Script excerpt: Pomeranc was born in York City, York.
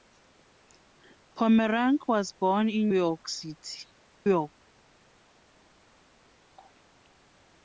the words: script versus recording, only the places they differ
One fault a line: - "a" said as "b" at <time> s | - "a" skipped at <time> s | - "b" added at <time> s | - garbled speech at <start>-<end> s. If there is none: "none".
none